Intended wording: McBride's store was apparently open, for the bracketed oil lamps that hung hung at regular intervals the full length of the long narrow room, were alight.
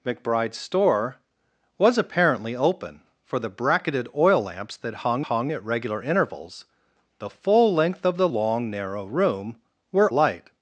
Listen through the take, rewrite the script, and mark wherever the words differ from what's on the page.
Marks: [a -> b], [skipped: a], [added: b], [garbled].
McBride's store was apparently open, for the bracketed oil lamps that hung hung at regular intervals the full length of the long narrow room, were alight.